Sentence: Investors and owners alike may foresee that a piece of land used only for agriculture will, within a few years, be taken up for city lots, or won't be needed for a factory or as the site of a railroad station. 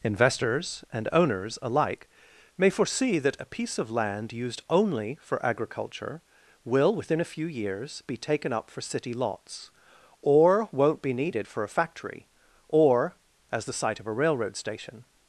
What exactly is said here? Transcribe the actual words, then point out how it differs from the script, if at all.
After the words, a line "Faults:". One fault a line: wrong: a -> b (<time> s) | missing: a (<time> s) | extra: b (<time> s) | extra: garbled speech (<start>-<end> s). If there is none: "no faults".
Investors and owners alike may foresee that a piece of land used only for agriculture will, within a few years, be taken up for city lots, or won't be needed for a factory or as the site of a railroad station.
Faults:
no faults